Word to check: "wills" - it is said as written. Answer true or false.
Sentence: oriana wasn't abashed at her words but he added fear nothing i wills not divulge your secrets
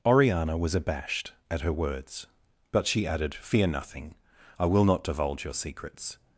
false